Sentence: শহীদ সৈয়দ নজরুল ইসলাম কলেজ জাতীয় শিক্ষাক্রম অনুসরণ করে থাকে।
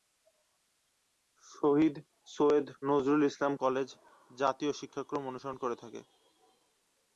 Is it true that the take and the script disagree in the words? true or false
false